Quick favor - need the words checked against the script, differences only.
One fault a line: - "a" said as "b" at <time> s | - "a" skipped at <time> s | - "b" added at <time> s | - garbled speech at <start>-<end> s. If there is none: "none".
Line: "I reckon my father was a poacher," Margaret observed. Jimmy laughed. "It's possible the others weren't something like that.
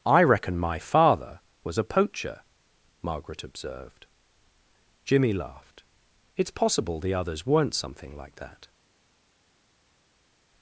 none